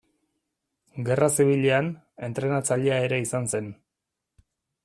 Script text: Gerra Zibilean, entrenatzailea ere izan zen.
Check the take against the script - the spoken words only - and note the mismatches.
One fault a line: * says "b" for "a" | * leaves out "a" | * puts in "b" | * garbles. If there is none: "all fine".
all fine